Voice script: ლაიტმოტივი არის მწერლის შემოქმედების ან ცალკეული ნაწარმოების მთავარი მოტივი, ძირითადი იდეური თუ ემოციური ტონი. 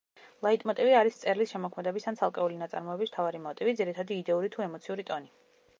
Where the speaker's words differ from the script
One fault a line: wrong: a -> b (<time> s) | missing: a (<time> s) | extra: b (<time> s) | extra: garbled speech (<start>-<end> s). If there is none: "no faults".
no faults